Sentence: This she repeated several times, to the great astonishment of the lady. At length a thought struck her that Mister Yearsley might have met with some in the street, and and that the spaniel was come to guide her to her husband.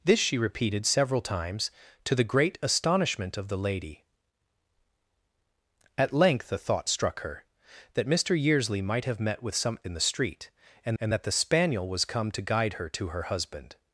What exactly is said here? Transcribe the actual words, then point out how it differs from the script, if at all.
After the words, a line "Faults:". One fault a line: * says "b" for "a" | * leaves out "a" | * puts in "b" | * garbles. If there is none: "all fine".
This she repeated several times, to the great astonishment of the lady. At length a thought struck her that Mister Yearsley might have met with some in the street, and and that the spaniel was come to guide her to her husband.
Faults:
all fine